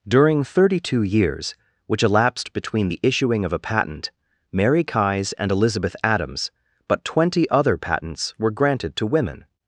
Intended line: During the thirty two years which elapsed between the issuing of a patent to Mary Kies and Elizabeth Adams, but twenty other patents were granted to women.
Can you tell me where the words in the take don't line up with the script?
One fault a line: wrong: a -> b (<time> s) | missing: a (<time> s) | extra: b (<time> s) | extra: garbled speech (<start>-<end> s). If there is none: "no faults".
missing: the (0.4 s)
missing: to (4.1 s)